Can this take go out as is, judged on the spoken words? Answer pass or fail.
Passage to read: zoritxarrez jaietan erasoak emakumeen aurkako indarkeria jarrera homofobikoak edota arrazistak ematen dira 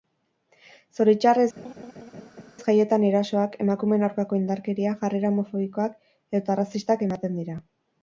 pass